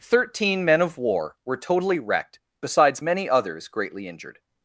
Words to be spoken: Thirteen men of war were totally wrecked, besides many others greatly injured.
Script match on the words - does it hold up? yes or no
yes